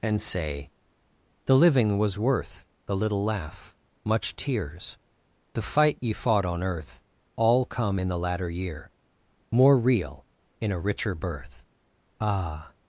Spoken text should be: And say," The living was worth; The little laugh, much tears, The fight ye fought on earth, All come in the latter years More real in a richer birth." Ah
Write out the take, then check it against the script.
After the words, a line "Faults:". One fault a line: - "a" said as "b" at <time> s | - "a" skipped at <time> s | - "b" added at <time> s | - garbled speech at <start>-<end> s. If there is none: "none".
And say," The living was worth; The little laugh, much tears, The fight ye fought on earth, All come in the latter year More real in a richer birth." Ah
Faults:
- "years" said as "year" at 8.5 s